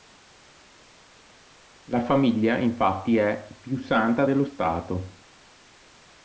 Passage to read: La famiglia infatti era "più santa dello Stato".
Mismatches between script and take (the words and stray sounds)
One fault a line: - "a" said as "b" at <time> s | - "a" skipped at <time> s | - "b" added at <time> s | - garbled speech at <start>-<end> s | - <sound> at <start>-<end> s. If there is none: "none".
- "era" said as "è" at 3.2 s